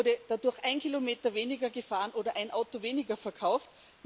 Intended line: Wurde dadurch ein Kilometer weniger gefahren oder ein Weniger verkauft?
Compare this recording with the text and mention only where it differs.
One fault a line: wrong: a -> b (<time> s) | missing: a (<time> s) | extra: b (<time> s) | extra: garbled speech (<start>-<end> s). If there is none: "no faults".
extra: Auto (2.5 s)